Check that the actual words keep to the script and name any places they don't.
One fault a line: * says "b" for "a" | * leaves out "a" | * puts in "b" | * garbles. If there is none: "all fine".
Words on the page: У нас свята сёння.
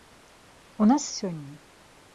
* leaves out "свята"